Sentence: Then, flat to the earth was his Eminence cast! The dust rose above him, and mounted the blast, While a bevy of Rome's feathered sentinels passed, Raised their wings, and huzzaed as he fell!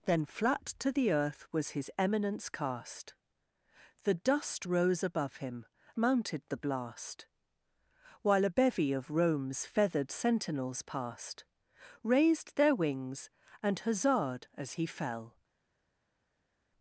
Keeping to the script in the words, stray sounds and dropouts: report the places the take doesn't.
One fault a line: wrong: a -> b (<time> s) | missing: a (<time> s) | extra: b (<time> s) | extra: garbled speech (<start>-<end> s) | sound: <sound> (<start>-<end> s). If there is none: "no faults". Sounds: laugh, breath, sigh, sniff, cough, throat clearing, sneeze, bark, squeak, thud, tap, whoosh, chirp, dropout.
missing: and (5.6 s)